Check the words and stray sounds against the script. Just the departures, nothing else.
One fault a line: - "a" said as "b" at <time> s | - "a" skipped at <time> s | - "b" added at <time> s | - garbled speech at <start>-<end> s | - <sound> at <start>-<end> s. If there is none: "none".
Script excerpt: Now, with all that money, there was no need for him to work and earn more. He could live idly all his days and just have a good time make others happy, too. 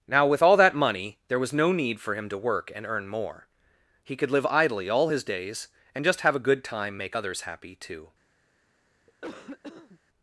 - cough at 9.1-10.0 s